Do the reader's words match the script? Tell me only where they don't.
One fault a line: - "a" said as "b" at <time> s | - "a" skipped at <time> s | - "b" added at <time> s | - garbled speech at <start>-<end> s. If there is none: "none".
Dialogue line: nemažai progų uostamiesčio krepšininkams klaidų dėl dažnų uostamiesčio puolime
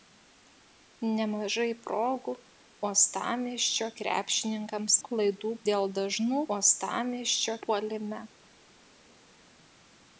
none